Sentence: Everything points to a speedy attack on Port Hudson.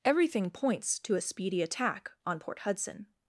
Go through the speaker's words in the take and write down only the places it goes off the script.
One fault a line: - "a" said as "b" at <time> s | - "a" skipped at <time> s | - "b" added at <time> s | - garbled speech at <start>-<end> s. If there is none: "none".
none